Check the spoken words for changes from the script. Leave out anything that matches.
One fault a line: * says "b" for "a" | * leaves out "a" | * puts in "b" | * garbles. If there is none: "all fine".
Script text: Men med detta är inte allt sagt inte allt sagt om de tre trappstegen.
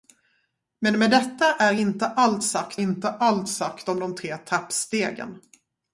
all fine